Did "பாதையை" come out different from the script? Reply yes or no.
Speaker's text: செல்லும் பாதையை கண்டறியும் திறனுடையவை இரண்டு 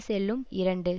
yes